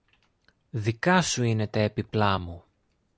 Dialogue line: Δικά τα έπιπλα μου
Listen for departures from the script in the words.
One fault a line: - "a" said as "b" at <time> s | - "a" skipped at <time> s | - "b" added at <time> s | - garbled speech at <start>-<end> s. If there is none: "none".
- "σου είναι" added at 1.2 s